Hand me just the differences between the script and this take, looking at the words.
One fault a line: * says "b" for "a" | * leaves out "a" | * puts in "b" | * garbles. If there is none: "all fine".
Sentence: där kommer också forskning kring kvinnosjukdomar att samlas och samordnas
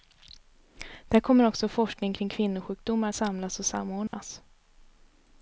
* leaves out "att"